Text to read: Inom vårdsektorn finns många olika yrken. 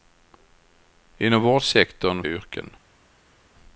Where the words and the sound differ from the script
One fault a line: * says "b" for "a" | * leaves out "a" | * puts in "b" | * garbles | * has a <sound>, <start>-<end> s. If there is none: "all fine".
* leaves out "finns många olika"